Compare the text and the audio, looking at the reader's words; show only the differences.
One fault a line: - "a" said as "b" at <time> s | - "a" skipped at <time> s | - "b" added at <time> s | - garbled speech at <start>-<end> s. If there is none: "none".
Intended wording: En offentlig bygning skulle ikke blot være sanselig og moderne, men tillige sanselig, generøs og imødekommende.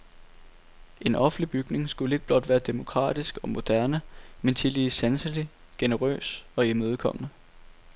- "sanselig" said as "demokratisk" at 2.6 s